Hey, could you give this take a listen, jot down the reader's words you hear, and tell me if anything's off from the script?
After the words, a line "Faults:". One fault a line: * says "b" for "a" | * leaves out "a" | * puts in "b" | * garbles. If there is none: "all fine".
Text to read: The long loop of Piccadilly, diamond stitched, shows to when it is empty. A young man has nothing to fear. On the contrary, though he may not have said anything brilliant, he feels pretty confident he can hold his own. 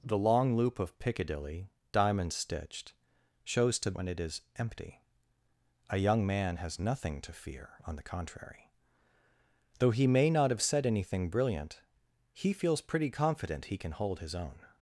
The long loop of Piccadilly, diamond stitched, shows to when it is empty. A young man has nothing to fear. On the contrary, though he may not have said anything brilliant, he feels pretty confident he can hold his own.
Faults:
all fine